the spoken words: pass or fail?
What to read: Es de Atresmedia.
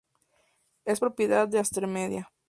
fail